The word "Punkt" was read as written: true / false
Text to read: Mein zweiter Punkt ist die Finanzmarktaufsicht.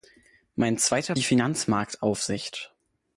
false